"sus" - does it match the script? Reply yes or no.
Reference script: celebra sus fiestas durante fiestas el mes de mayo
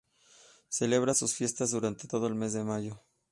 yes